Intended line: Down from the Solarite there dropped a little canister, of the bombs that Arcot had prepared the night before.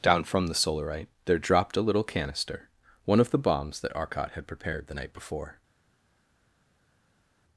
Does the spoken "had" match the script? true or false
true